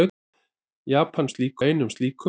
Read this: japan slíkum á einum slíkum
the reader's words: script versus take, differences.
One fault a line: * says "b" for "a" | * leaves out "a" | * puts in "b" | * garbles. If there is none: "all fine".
all fine